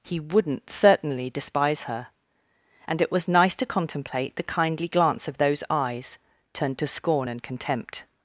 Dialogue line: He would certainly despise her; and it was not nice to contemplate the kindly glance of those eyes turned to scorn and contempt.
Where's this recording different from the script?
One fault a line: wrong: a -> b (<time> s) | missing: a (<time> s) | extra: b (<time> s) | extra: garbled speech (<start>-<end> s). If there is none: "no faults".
wrong: would -> wouldn't (0.2 s)
missing: not (3.3 s)